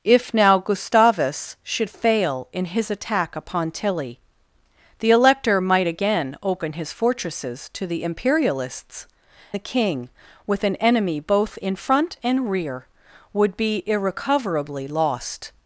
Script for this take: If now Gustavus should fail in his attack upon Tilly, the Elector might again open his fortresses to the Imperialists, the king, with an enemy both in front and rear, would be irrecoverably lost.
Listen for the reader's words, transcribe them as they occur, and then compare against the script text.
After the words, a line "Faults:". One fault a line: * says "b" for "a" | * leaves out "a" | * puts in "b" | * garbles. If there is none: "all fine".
If now Gustavus should fail in his attack upon Tilly, the Elector might again open his fortresses to the Imperialists, the king, with an enemy both in front and rear, would be irrecoverably lost.
Faults:
all fine